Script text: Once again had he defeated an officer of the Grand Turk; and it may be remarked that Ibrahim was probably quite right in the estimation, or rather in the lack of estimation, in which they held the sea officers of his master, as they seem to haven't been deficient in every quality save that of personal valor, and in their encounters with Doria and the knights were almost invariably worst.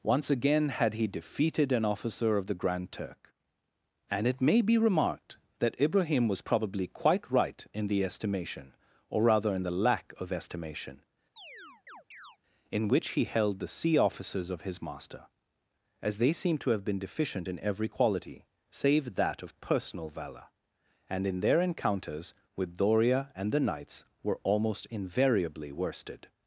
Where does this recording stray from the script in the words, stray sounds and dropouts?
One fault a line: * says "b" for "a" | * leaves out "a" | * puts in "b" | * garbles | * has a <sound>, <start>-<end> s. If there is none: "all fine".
* has a chirp, 11.4-12.4 s
* says "he" for "they"
* says "have" for "haven't"
* says "worsted" for "worst"